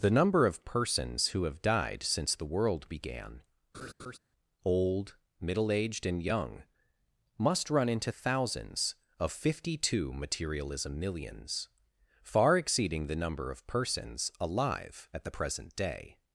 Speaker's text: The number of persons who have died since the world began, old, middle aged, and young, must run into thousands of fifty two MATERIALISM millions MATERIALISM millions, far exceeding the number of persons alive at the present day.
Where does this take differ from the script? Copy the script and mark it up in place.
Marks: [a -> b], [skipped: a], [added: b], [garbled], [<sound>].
The number of persons who have died since the world began, [laugh] old, middle aged, and young, must run into thousands of fifty two MATERIALISM millions [skipped: MATERIALISM millions,] far exceeding the number of persons alive at the present day.